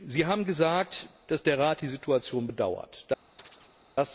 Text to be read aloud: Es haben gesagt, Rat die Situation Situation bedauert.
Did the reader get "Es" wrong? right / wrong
wrong